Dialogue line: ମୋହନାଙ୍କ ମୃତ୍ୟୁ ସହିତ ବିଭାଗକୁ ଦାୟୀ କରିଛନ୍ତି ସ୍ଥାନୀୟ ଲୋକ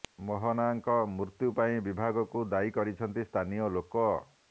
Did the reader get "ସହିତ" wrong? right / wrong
wrong